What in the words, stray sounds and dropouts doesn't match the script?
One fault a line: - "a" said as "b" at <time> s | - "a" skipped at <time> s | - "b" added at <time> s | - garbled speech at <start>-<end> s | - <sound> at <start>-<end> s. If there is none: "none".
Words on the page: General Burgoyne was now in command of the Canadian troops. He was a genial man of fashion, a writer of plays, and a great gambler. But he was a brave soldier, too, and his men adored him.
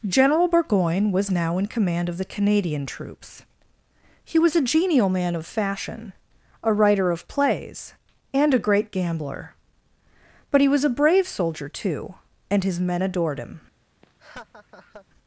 - laugh at 14.0-15.1 s